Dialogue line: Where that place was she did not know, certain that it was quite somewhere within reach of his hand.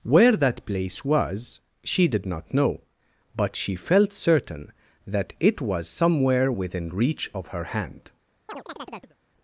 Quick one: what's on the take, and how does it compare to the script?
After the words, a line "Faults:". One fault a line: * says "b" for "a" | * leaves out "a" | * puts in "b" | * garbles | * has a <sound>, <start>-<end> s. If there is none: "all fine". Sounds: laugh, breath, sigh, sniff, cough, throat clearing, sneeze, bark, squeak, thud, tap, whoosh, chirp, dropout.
Where that place was she did not know, but she felt certain that it was somewhere within reach of her hand.
Faults:
* puts in "but she felt"
* leaves out "quite"
* says "her" for "his"
* has a chirp, 8.5-9.2 s